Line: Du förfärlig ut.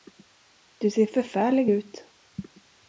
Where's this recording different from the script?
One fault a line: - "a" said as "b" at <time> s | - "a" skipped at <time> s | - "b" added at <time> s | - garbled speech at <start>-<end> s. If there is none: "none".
- "ser" added at 0.9 s